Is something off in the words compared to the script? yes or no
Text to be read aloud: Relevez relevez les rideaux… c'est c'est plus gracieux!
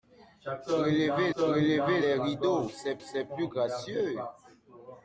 no